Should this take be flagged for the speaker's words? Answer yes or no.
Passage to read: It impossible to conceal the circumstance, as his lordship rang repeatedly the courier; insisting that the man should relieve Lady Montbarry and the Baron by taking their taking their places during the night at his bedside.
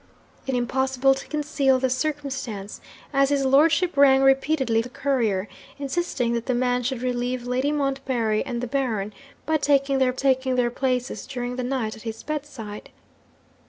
no